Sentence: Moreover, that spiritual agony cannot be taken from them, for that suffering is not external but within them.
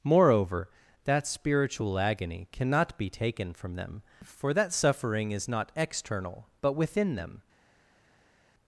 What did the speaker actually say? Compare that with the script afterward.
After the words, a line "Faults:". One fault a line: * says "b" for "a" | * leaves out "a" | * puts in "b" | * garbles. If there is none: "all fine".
Moreover, that spiritual agony cannot be taken from them, for that suffering is not external but within them.
Faults:
all fine